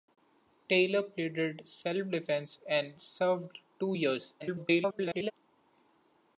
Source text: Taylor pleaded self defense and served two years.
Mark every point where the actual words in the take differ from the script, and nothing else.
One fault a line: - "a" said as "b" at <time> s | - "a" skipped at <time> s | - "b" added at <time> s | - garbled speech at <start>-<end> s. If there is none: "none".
- garbled speech at 4.4-5.3 s